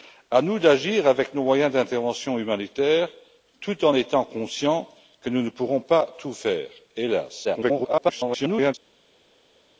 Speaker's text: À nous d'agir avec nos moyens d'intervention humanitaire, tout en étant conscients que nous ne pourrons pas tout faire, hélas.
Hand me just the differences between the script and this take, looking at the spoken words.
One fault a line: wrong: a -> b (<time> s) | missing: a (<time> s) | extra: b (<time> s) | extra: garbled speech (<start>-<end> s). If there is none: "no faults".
extra: garbled speech (7.4-8.7 s)